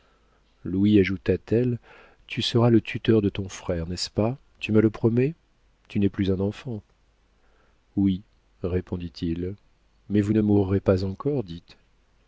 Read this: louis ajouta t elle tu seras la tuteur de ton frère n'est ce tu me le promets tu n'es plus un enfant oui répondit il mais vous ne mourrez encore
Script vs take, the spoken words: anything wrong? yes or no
yes